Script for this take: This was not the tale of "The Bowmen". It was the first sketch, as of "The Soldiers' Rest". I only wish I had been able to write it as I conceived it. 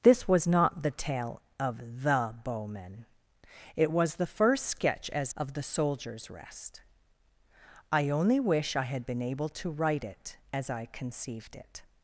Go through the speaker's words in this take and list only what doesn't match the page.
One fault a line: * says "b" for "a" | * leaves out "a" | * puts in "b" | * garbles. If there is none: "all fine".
all fine